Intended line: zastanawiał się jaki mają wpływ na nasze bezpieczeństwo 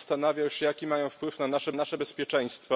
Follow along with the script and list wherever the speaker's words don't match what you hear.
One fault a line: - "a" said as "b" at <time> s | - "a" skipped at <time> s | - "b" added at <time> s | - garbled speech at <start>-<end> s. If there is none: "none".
- "nasze" added at 1.7 s